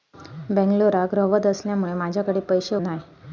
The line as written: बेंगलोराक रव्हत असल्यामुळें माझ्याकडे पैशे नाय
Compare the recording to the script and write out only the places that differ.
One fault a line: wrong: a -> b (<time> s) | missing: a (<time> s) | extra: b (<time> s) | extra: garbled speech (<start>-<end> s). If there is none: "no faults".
no faults